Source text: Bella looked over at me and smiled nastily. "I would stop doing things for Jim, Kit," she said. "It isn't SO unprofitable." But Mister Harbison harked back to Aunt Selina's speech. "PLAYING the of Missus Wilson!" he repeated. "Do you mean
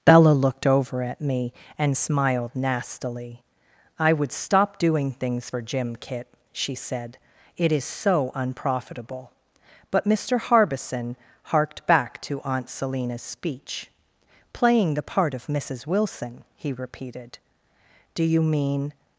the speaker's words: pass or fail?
fail